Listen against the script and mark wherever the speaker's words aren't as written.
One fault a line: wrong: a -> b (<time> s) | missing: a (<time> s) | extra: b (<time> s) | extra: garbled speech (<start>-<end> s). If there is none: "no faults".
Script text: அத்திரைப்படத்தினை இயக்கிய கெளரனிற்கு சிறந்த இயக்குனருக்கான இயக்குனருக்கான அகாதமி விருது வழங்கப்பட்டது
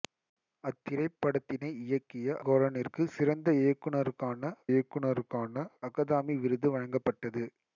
no faults